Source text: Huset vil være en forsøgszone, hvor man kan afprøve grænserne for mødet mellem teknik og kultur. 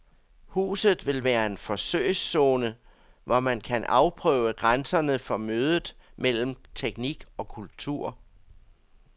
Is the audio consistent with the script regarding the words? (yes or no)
yes